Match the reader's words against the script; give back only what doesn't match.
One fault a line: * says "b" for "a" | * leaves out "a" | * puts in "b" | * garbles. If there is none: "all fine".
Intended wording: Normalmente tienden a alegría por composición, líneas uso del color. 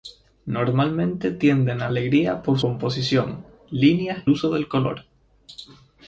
all fine